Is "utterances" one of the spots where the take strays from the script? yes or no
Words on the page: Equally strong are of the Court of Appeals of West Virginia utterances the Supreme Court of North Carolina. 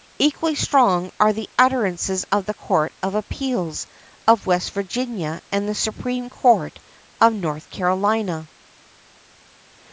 yes